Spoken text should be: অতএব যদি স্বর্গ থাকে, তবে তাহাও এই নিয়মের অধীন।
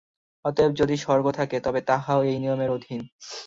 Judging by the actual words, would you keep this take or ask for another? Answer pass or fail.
pass